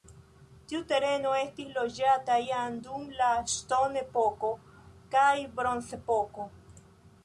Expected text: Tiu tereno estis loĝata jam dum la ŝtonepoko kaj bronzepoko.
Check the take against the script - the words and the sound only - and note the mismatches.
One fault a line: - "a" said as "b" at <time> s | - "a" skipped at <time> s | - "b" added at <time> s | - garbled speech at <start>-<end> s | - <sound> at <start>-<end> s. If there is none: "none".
none